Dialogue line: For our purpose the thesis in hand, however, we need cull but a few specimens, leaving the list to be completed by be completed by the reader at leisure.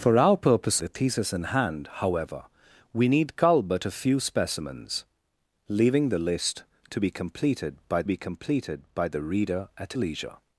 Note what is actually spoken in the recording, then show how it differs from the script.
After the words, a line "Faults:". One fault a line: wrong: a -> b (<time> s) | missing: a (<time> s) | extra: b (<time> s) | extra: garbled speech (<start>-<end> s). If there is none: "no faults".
For our purpose the thesis in hand, however, we need cull but a few specimens, leaving the list to be completed by be completed by the reader at leisure.
Faults:
no faults